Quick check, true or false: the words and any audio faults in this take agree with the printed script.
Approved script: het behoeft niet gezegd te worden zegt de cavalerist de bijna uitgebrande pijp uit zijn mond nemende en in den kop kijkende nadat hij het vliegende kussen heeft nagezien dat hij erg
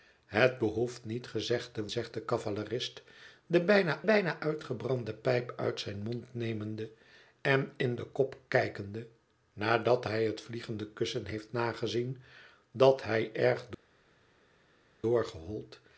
false